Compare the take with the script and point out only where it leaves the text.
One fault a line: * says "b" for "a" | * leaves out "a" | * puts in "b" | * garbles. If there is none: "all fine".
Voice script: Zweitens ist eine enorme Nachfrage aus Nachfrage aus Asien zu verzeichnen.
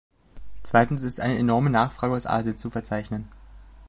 * leaves out "Nachfrage aus"